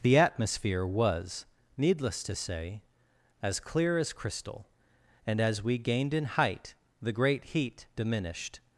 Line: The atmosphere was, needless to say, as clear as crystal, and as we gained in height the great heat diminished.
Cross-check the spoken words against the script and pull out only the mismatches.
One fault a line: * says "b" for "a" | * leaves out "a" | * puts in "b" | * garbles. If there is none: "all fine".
all fine